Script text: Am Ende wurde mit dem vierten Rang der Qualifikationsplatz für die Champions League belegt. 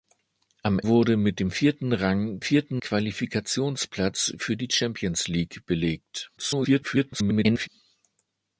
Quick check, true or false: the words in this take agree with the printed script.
false